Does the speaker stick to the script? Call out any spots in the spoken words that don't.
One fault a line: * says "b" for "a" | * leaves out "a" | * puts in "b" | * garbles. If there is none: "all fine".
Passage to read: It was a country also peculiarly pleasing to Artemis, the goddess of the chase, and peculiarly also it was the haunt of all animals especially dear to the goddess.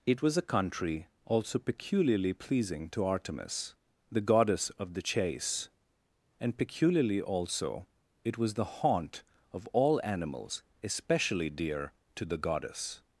all fine